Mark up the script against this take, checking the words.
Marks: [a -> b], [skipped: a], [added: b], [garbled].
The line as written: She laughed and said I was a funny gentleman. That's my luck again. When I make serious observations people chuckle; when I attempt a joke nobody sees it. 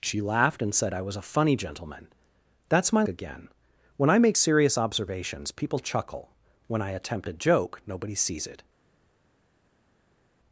She laughed and said I was a funny gentleman. That's my [skipped: luck] again. When I make serious observations people chuckle; when I attempt a joke nobody sees it.